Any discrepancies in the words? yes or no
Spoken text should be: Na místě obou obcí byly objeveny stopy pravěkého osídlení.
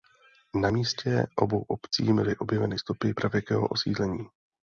no